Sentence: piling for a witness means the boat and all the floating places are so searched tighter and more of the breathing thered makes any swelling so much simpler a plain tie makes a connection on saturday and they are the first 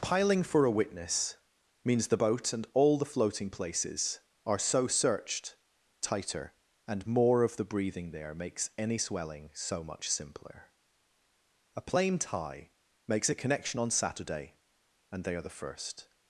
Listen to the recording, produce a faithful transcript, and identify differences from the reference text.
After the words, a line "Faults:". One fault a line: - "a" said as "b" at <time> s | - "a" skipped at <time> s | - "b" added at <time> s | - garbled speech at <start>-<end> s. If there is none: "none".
piling for a witness means the boat and all the floating places are so searched tighter and more of the breathing there makes any swelling so much simpler a plain tie makes a connection on saturday and they are the first
Faults:
- "thered" said as "there" at 8.1 s